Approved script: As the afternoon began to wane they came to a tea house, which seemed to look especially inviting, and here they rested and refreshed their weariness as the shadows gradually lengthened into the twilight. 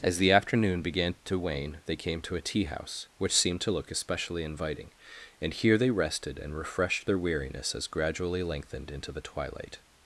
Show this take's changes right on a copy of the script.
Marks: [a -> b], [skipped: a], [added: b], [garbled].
As the afternoon began to wane they came to a tea house, which seemed to look especially inviting, and here they rested and refreshed their weariness as [skipped: the shadows] gradually lengthened into the twilight.